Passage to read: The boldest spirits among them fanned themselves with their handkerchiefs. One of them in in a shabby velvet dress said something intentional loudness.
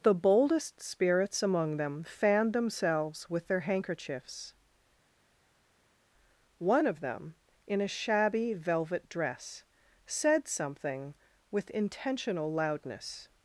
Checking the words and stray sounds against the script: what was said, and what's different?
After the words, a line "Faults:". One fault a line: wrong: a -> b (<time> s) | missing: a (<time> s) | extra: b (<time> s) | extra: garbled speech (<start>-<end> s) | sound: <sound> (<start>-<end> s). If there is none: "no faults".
The boldest spirits among them fanned themselves with their handkerchiefs. One of them in a shabby velvet dress said something with intentional loudness.
Faults:
missing: in (7.8 s)
extra: with (11.5 s)